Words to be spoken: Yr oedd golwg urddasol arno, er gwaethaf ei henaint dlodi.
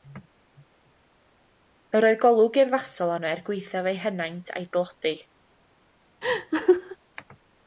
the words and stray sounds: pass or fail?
fail